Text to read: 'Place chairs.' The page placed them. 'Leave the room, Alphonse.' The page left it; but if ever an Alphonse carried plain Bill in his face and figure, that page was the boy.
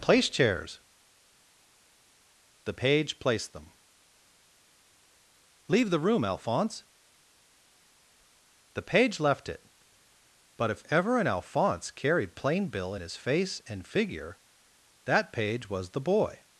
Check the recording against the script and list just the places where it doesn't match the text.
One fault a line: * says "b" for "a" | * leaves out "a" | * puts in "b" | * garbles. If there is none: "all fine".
all fine